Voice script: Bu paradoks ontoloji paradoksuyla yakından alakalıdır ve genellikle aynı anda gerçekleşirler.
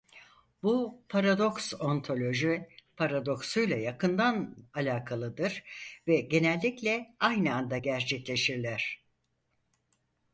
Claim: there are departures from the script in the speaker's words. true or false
false